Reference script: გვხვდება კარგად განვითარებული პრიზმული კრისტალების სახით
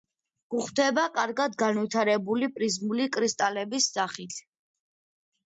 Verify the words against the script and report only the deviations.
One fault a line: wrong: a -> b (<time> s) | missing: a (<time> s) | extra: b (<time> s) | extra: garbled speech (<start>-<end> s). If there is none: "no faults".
no faults